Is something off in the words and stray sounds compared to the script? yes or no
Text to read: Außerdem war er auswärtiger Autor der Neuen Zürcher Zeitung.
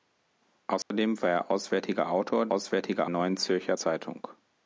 yes